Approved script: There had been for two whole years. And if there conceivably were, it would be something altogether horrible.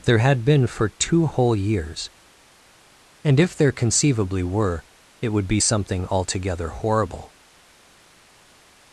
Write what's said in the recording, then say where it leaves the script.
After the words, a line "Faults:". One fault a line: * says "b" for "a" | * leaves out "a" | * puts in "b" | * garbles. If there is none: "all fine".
There had been for two whole years. And if there conceivably were, it would be something altogether horrible.
Faults:
all fine